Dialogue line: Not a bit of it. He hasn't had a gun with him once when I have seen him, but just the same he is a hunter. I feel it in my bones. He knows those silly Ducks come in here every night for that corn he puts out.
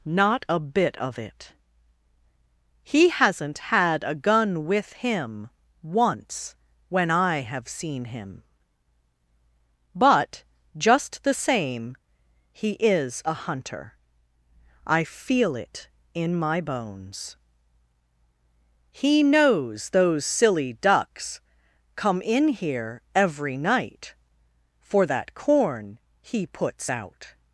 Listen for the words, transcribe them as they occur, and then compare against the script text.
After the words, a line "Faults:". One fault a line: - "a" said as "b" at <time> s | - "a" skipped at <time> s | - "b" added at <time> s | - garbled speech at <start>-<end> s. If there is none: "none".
Not a bit of it. He hasn't had a gun with him once when I have seen him, but just the same he is a hunter. I feel it in my bones. He knows those silly Ducks come in here every night for that corn he puts out.
Faults:
none